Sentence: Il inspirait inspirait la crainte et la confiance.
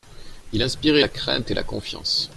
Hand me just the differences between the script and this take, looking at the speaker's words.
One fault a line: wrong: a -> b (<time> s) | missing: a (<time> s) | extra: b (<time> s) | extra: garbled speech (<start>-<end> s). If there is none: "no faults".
missing: inspirait (1.0 s)